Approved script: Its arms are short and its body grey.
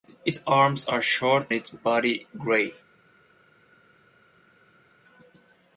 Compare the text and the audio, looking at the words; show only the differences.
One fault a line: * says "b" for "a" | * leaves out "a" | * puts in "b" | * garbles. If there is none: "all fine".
* leaves out "and"